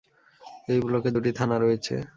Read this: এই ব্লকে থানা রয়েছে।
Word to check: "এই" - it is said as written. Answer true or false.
true